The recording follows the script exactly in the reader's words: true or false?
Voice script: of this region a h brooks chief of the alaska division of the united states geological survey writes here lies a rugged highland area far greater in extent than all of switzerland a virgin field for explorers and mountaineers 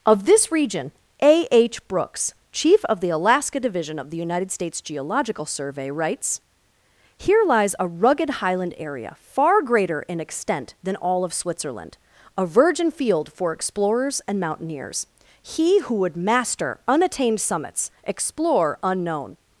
false